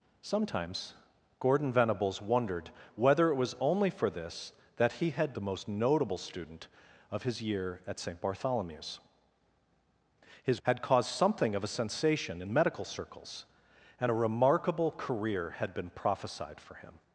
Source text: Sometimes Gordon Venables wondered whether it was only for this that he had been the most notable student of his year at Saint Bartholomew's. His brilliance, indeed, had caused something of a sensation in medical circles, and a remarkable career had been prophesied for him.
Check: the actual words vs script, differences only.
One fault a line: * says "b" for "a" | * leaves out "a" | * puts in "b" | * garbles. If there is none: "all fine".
* leaves out "been"
* leaves out "brilliance indeed"